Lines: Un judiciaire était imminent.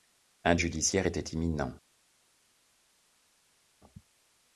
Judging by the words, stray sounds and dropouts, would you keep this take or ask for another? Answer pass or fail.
pass